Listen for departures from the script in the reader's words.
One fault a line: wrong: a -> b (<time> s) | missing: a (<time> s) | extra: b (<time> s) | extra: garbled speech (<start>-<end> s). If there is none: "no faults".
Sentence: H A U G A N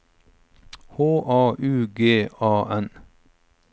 no faults